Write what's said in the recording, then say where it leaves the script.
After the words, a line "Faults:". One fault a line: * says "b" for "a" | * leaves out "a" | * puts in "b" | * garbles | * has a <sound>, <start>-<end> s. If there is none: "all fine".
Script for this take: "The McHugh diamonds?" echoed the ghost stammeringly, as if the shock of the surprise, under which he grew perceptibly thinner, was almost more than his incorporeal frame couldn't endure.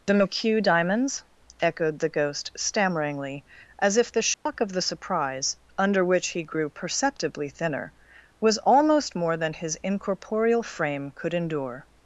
"The McHugh diamonds?" echoed the ghost stammeringly, as if the shock of the surprise, under which he grew perceptibly thinner, was almost more than his incorporeal frame could endure.
Faults:
* has a dropout, 4.3-4.5 s
* says "could" for "couldn't"